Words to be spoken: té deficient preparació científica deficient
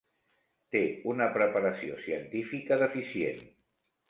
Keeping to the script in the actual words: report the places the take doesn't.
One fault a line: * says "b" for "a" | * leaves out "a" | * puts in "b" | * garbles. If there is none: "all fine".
* says "una" for "deficient"